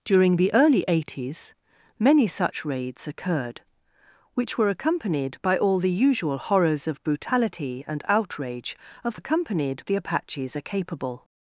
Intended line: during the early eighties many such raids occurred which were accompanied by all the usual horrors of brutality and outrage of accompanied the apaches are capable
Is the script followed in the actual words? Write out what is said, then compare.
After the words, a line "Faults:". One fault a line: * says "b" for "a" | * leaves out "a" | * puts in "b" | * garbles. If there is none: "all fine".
during the early eighties many such raids occurred which were accompanied by all the usual horrors of brutality and outrage of accompanied the apaches are capable
Faults:
all fine